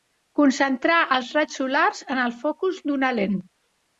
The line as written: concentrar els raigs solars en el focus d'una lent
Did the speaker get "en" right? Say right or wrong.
right